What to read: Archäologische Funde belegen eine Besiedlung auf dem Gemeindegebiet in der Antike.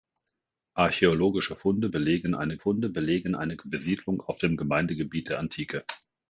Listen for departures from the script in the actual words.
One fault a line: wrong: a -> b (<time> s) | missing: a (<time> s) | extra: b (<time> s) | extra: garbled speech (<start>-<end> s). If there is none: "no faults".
extra: Funde belegen eine (2.6 s)
missing: in (5.3 s)